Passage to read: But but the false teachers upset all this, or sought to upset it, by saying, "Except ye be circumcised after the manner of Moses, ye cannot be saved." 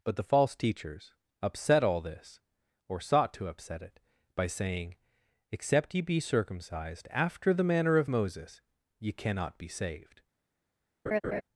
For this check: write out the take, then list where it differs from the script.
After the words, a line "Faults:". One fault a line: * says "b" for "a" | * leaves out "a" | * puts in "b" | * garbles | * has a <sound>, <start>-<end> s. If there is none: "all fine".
But the false teachers upset all this, or sought to upset it, by saying, "Except ye be circumcised after the manner of Moses, ye cannot be saved."
Faults:
* leaves out "but"
* has a laugh, 11.1-11.4 s